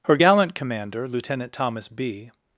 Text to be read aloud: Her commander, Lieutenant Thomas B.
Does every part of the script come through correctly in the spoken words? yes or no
no